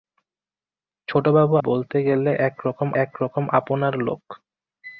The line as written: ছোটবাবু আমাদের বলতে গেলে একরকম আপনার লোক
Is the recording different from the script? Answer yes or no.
yes